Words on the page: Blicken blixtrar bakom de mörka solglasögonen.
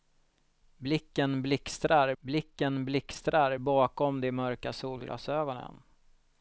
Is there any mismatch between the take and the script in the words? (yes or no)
yes